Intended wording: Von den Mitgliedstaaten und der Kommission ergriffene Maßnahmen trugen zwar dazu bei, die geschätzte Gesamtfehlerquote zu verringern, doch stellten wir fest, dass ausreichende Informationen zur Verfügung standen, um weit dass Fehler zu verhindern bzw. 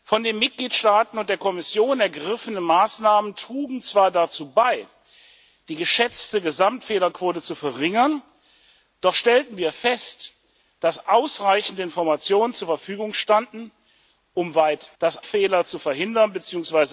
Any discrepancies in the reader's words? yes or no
no